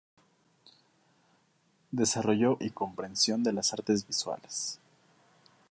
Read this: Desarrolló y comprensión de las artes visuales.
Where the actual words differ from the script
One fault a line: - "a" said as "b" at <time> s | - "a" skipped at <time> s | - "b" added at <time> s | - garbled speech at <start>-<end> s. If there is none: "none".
none